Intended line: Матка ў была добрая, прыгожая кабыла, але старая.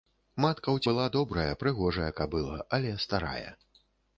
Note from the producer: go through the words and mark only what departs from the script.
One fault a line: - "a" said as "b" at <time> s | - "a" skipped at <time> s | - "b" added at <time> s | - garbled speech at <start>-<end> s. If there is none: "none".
none